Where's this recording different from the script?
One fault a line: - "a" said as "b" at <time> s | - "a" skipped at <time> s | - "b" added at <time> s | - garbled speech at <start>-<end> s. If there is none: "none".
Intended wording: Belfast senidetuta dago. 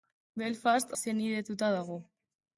none